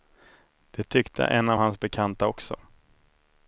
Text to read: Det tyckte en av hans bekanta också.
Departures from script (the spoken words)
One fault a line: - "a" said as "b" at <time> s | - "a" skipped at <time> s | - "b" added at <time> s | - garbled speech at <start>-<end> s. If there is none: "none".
none